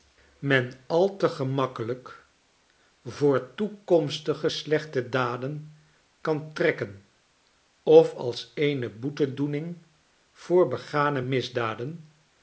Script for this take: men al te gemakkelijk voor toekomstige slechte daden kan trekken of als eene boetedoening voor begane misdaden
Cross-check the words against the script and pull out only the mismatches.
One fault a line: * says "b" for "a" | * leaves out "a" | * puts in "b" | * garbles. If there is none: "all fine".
all fine